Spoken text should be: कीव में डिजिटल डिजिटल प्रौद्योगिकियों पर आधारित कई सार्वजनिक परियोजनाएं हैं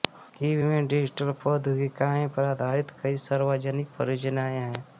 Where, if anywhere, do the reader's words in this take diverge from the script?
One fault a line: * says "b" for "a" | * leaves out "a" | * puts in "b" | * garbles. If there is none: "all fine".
* leaves out "डिजिटल"